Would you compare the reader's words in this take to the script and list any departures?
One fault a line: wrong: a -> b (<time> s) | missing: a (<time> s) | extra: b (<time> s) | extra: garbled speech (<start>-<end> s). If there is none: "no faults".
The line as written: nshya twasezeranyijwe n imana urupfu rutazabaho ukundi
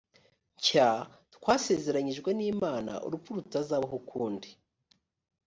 no faults